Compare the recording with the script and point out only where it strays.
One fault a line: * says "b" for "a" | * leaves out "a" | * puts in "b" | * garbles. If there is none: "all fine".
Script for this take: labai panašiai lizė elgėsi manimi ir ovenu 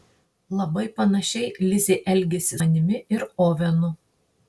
all fine